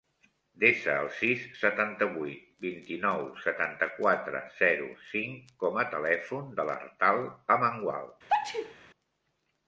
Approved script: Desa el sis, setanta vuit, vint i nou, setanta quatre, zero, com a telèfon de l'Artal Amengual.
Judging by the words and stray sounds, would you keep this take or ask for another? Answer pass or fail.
fail